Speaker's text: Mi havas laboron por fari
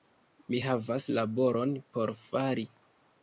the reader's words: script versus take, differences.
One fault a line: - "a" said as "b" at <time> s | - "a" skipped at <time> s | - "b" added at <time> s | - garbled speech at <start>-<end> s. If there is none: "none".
none